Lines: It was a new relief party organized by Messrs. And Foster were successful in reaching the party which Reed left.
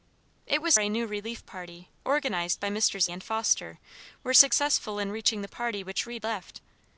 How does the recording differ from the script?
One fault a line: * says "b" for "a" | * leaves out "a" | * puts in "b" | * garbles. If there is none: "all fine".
all fine